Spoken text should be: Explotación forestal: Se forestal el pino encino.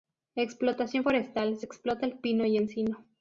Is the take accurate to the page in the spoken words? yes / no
no